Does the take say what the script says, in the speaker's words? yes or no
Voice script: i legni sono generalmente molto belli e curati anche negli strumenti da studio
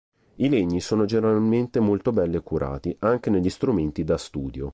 yes